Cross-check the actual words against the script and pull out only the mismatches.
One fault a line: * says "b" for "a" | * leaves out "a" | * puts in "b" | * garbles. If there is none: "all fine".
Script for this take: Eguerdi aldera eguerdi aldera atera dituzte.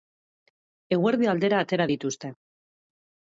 * leaves out "eguerdi aldera"